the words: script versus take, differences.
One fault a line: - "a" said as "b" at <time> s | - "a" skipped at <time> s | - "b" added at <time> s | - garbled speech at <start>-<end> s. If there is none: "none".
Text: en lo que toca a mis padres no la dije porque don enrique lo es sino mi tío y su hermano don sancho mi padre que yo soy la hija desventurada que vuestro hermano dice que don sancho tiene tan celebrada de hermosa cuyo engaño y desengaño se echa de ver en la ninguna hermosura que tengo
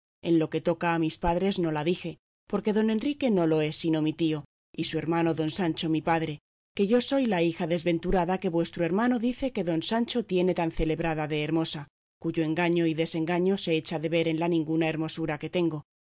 - "no" added at 3.3 s